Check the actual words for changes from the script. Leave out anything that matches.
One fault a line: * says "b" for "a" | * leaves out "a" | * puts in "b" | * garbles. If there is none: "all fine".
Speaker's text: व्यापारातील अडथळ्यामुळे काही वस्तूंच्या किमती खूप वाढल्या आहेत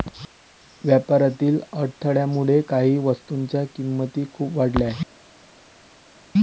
all fine